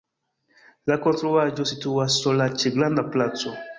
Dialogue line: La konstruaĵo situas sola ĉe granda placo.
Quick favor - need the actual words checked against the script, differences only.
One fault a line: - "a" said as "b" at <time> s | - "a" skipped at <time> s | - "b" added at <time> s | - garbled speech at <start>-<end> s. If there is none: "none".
none